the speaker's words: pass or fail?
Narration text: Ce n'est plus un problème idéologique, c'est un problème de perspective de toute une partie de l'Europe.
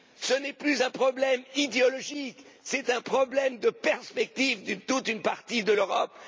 pass